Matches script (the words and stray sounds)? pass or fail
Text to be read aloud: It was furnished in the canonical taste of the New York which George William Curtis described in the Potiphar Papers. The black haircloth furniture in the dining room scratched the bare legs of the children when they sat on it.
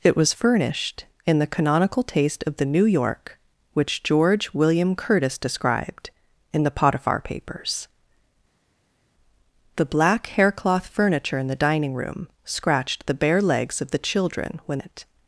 fail